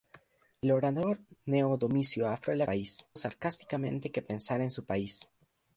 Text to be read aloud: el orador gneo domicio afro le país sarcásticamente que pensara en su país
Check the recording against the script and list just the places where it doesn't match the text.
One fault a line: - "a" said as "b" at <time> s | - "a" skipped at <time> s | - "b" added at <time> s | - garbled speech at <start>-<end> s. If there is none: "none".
none